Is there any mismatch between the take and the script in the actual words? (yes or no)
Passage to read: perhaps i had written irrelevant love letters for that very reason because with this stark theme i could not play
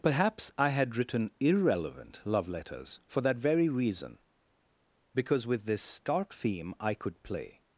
yes